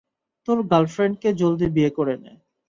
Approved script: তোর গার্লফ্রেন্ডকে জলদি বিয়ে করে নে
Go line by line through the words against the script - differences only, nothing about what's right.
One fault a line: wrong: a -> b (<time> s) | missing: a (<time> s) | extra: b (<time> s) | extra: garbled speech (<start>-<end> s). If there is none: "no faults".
no faults